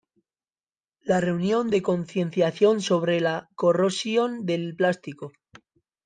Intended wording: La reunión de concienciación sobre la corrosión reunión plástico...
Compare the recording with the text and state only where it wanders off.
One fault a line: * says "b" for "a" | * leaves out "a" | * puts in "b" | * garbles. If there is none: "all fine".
* says "del" for "reunión"